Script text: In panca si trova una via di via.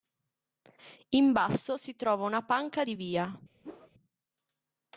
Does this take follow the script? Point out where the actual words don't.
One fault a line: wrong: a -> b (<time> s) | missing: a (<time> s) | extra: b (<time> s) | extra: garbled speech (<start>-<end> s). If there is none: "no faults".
wrong: panca -> basso (1.3 s)
wrong: via -> panca (2.4 s)